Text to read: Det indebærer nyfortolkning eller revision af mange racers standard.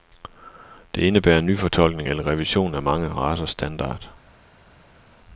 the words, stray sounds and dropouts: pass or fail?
pass